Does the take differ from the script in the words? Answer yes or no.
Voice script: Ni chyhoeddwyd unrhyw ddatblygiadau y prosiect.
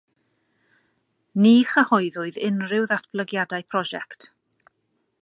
no